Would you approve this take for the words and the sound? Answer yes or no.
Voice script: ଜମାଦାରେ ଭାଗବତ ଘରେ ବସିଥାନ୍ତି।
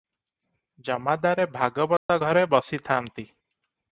no